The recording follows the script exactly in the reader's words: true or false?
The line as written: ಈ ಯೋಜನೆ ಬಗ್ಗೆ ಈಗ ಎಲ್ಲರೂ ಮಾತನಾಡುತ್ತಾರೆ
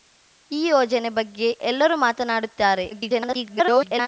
false